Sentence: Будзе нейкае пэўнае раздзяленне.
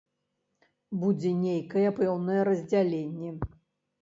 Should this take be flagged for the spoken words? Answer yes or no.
no